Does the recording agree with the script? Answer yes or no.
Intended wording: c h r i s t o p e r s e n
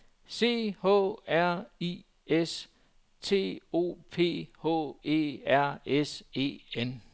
no